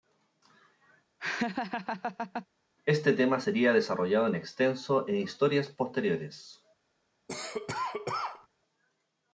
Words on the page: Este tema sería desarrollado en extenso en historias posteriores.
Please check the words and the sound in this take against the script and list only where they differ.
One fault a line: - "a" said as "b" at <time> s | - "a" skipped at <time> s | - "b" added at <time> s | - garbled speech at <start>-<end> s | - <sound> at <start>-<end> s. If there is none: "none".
- laugh at 1.2-2.5 s
- cough at 7.3-8.5 s